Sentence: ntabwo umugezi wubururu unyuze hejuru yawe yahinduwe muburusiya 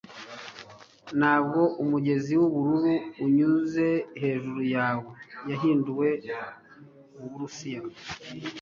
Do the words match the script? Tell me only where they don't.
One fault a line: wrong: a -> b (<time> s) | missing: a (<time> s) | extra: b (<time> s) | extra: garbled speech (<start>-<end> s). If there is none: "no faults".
no faults